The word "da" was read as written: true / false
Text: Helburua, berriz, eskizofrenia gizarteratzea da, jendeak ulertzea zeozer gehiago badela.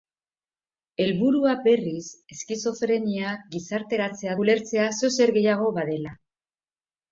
false